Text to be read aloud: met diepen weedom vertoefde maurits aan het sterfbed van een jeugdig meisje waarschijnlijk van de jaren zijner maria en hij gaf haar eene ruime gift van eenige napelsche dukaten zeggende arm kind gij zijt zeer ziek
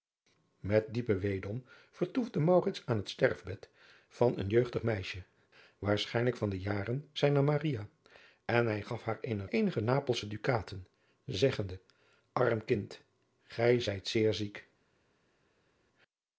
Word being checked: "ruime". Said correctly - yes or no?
no